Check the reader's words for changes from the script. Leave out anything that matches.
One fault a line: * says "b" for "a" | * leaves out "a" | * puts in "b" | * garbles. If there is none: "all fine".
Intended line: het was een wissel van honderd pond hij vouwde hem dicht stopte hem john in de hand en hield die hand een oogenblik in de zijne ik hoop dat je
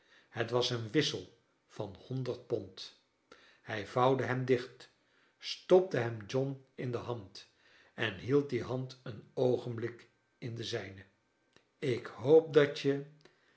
all fine